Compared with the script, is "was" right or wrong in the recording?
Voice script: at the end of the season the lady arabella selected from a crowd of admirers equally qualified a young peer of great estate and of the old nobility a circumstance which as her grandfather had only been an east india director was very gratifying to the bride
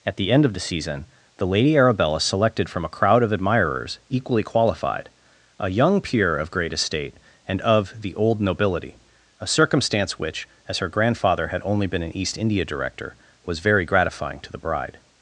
right